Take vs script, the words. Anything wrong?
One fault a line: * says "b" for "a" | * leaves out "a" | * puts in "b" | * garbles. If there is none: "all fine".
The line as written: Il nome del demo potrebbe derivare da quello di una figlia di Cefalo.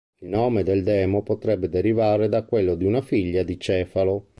all fine